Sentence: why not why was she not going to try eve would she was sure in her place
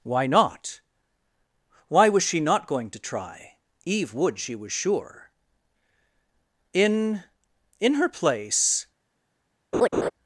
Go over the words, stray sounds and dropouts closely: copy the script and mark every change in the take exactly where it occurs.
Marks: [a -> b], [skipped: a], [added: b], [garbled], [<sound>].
why not why was she not going to try eve would she was sure in [added: in] her place [laugh]